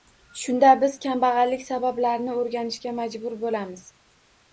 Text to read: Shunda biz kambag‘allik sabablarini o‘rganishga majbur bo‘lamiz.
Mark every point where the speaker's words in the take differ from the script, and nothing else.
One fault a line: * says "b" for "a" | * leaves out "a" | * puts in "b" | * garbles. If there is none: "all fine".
all fine